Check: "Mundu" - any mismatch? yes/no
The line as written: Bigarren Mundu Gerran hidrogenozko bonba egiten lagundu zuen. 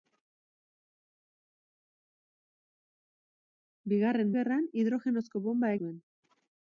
yes